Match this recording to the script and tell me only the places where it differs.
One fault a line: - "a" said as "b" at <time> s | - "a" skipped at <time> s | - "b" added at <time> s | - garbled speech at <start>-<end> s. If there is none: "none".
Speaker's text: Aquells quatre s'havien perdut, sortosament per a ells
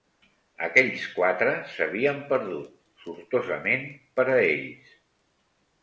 none